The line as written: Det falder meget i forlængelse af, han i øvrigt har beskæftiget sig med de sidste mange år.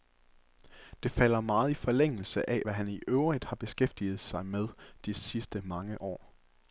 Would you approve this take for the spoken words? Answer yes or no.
no